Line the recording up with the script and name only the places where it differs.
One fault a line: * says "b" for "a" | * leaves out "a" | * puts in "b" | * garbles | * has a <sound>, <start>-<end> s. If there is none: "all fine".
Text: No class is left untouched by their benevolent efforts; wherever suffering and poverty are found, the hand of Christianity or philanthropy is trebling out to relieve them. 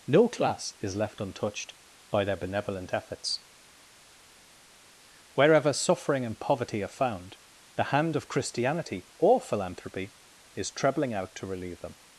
all fine